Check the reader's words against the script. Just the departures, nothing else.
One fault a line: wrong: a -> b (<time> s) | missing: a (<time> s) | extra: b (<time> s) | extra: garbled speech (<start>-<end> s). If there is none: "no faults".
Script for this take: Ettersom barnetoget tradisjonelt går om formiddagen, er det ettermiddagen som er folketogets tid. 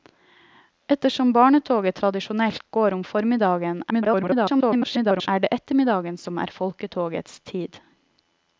extra: garbled speech (3.9-5.3 s)